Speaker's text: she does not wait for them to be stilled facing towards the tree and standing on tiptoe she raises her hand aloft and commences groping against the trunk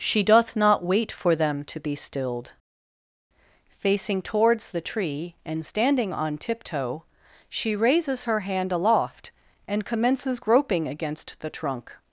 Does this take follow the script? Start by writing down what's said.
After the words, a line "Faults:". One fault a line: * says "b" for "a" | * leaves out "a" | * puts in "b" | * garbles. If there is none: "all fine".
she doth not wait for them to be stilled facing towards the tree and standing on tiptoe she raises her hand aloft and commences groping against the trunk
Faults:
* says "doth" for "does"